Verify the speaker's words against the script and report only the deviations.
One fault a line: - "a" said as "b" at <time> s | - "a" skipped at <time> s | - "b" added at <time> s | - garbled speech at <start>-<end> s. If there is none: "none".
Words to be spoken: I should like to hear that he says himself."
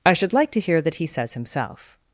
none